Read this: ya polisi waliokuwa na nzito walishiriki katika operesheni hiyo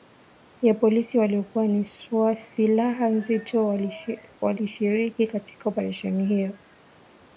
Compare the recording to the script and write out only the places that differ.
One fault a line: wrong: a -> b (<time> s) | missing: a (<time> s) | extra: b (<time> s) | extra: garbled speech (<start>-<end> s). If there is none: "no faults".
extra: silaha (2.4 s)